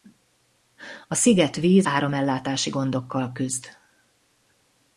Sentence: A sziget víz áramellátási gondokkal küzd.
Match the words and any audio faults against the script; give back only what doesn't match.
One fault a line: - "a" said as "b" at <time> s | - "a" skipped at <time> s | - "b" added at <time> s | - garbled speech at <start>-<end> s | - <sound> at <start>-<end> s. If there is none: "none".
none